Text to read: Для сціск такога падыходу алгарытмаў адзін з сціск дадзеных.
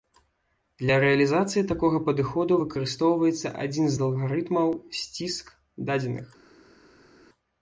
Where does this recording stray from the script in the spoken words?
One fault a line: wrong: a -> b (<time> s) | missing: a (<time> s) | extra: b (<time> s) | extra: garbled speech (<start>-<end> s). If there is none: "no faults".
wrong: сціск -> рэалізацыі (1.0 s)
wrong: алгарытмаў -> выкарыстоўваецца (2.6 s)
extra: алгарытмаў (4.1 s)